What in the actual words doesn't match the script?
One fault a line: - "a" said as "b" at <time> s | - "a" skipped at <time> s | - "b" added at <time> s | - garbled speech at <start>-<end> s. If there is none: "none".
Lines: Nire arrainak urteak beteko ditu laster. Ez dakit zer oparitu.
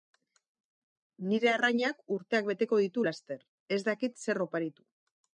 none